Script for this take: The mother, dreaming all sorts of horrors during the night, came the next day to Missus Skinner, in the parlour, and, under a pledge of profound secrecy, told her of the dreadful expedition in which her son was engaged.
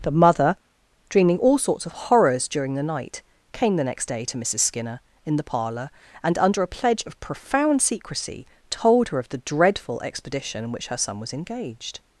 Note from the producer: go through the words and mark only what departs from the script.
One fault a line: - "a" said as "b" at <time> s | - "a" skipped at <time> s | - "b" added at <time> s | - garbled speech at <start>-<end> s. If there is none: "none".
none